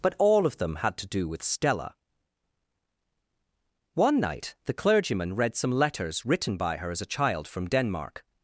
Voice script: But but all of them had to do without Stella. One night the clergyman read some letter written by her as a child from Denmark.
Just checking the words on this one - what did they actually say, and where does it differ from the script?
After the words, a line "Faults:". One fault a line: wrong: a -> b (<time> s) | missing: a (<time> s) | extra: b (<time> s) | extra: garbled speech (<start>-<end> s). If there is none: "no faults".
But all of them had to do with Stella. One night the clergyman read some letters written by her as a child from Denmark.
Faults:
missing: but (0.1 s)
wrong: without -> with (1.3 s)
wrong: letter -> letters (5.7 s)